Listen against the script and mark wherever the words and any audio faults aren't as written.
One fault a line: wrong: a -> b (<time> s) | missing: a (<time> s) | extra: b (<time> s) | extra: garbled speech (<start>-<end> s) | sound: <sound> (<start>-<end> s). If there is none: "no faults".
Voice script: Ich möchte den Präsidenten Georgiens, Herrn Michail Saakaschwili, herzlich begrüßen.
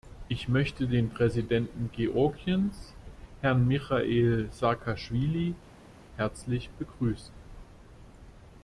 no faults